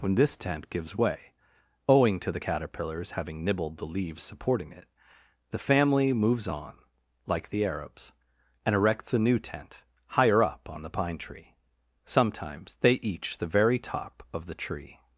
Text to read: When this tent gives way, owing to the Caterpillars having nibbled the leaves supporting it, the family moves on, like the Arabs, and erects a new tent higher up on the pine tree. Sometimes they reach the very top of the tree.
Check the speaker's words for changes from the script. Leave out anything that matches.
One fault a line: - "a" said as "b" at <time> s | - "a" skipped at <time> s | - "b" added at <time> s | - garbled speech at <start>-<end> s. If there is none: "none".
- "reach" said as "each" at 12.9 s